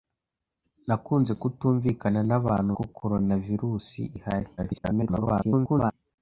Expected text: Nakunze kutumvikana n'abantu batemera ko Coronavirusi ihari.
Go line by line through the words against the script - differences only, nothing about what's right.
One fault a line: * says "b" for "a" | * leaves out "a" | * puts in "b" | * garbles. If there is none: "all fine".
* leaves out "batemera"
* garbles